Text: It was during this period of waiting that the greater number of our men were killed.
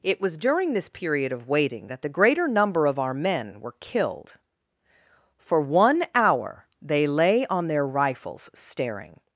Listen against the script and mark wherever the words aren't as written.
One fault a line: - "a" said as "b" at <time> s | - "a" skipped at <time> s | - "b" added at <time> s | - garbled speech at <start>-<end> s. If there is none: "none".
- "For one hour they lay on their rifles staring" added at 5.4 s